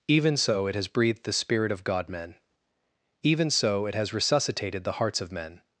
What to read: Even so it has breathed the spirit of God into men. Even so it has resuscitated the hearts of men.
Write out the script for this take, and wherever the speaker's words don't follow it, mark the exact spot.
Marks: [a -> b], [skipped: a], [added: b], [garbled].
Even so it has breathed the spirit of God [skipped: into] men. Even so it has resuscitated the hearts of men.